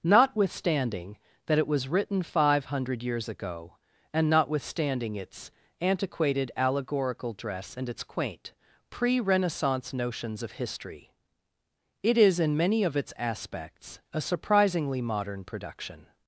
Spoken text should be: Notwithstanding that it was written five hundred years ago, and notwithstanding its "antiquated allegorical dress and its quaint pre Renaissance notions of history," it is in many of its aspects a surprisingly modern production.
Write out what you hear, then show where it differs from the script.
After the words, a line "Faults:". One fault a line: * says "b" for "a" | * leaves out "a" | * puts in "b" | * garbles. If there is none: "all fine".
Notwithstanding that it was written five hundred years ago, and notwithstanding its "antiquated allegorical dress and its quaint pre Renaissance notions of history," it is in many of its aspects a surprisingly modern production.
Faults:
all fine